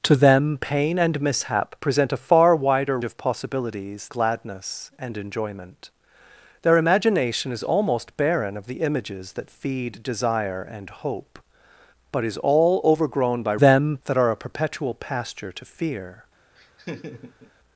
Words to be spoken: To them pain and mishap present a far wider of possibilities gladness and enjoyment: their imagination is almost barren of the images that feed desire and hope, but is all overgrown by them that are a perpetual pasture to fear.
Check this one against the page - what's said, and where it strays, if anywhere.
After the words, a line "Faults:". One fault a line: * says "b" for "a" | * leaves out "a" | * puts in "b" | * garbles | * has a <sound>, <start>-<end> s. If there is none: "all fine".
To them pain and mishap present a far wider of possibilities gladness and enjoyment: their imagination is almost barren of the images that feed desire and hope, but is all overgrown by them that are a perpetual pasture to fear.
Faults:
* has a laugh, 16.6-17.5 s